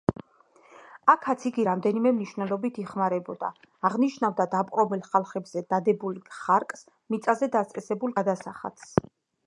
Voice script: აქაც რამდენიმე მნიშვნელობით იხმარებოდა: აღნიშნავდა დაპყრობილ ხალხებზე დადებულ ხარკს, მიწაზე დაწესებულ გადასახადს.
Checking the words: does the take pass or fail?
fail